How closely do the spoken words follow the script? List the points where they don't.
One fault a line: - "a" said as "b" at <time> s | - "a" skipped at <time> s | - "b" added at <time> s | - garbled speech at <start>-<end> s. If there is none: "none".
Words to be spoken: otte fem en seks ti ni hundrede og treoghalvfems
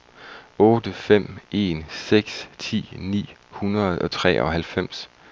none